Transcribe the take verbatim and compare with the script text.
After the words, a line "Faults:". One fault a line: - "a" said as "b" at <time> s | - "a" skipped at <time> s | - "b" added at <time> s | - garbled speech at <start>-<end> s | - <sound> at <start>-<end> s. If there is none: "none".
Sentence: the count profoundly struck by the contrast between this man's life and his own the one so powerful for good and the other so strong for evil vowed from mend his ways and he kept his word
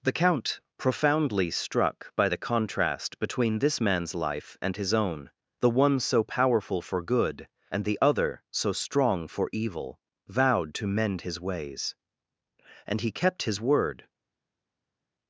the count profoundly struck by the contrast between this man's life and his own the one so powerful for good and the other so strong for evil vowed to mend his ways and he kept his word
Faults:
- "from" said as "to" at 10.7 s